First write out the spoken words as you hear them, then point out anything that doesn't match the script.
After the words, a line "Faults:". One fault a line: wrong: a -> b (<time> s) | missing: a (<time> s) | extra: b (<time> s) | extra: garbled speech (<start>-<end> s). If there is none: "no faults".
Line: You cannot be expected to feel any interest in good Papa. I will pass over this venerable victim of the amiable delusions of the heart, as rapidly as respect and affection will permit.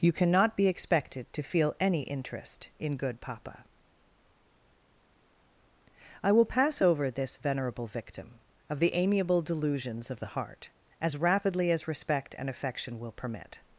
You cannot be expected to feel any interest in good Papa. I will pass over this venerable victim of the amiable delusions of the heart, as rapidly as respect and affection will permit.
Faults:
no faults